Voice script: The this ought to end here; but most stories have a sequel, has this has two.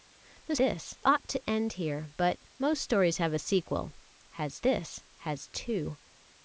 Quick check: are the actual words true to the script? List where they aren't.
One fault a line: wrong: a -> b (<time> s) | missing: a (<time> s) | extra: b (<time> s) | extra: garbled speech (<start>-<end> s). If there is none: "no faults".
no faults